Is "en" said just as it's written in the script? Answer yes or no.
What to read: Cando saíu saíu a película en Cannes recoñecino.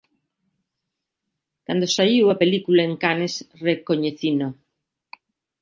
yes